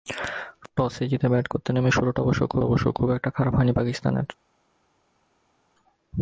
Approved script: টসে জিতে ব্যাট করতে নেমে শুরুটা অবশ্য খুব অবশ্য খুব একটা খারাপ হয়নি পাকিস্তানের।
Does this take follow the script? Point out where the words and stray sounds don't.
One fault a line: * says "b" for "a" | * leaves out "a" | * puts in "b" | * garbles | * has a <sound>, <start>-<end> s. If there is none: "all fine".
all fine